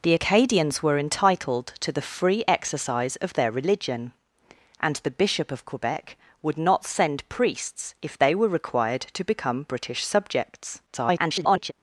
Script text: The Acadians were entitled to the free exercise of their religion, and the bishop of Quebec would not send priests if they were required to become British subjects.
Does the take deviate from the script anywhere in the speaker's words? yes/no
yes